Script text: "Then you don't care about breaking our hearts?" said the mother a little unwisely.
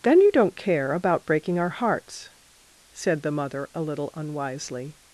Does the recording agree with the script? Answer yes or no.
yes